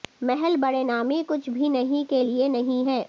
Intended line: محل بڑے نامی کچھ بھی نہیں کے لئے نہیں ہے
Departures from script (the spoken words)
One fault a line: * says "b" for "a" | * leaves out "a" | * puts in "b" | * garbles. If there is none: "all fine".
all fine